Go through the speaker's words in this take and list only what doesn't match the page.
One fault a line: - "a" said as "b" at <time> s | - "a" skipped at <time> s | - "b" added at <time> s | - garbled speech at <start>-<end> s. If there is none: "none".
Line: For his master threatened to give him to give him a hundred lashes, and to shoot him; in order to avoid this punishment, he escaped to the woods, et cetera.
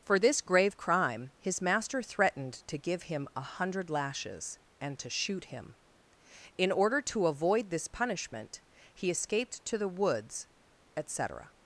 - "this grave crime" added at 0.2 s
- "to give him" skipped at 3.3 s